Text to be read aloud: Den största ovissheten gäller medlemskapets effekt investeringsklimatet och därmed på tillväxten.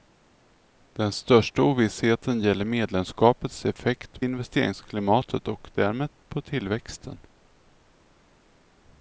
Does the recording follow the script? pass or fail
pass